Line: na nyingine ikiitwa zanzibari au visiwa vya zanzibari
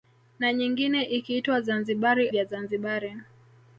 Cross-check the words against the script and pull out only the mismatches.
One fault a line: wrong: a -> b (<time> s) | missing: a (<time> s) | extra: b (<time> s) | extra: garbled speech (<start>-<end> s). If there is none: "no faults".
missing: au visiwa (2.3 s)